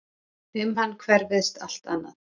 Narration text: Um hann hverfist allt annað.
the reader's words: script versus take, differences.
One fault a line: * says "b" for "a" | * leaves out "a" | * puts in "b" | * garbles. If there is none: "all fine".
all fine